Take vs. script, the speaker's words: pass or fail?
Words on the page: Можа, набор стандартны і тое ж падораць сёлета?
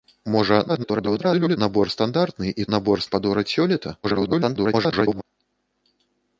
fail